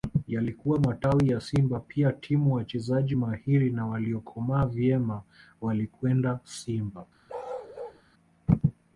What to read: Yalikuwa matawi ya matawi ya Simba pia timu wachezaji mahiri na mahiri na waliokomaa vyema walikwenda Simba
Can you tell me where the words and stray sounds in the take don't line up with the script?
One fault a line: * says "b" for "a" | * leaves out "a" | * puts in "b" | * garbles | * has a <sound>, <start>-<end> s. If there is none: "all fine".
* leaves out "matawi ya"
* leaves out "mahiri na"
* has a bark, 7.3-8.0 s